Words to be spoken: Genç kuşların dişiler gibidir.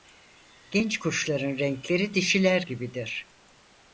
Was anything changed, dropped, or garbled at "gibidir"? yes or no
no